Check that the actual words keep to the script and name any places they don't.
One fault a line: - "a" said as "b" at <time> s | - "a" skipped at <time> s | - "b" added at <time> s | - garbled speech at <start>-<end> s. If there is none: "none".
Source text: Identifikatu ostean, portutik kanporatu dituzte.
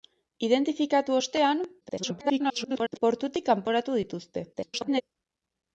- garbled speech at 1.8-3.0 s
- garbled speech at 4.5-5.0 s